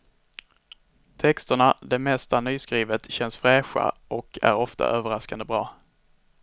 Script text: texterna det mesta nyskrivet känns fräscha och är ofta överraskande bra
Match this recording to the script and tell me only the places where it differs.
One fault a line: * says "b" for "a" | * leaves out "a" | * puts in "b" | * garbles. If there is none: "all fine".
all fine